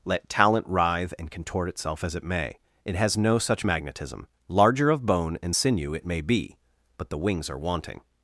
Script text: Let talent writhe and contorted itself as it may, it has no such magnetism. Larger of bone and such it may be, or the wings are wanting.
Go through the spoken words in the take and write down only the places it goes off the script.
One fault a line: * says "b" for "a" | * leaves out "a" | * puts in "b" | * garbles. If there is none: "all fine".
* says "contort" for "contorted"
* says "sinew" for "such"
* says "but" for "or"